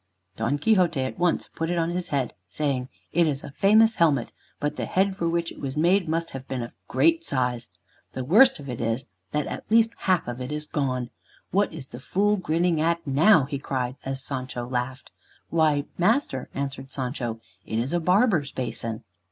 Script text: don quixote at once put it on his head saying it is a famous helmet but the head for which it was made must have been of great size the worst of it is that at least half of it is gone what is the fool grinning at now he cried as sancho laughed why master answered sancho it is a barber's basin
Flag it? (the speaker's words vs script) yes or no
no